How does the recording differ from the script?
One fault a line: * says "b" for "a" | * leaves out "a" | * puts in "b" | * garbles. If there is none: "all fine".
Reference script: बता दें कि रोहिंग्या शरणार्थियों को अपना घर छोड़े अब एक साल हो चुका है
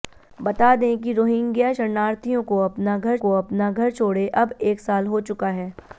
* puts in "को अपना घर"